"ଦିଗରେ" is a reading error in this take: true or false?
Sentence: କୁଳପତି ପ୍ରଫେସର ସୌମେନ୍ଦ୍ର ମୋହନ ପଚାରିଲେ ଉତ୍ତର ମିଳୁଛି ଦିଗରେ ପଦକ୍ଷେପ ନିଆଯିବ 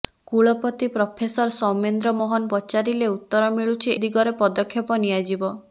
false